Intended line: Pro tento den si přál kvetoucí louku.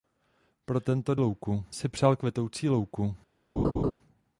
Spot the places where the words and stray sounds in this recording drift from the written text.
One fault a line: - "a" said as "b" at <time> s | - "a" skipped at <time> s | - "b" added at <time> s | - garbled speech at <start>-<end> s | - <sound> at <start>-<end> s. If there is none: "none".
- "den" said as "louku" at 1.2 s
- laugh at 3.6-3.9 s